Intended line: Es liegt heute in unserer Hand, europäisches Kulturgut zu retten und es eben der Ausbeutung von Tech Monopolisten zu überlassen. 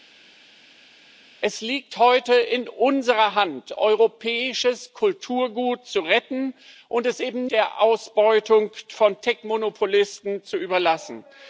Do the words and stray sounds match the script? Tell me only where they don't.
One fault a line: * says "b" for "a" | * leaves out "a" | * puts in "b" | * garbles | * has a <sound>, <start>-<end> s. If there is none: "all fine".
all fine